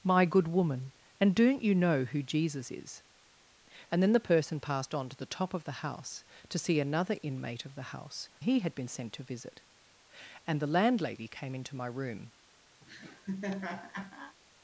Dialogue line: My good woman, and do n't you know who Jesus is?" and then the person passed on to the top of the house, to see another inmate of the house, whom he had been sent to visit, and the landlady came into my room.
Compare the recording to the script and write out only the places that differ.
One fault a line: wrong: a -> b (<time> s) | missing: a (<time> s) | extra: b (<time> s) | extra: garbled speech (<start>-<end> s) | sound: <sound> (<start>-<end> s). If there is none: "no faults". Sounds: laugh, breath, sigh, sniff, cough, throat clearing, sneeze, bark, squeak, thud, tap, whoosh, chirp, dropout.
missing: whom (8.3 s)
sound: laugh (12.8-14.4 s)